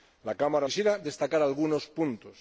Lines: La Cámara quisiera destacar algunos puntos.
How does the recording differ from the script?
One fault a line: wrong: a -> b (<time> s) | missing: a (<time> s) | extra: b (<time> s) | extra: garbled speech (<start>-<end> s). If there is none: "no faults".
no faults